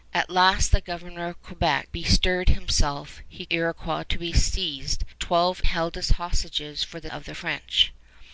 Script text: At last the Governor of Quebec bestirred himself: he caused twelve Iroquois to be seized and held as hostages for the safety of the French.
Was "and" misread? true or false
true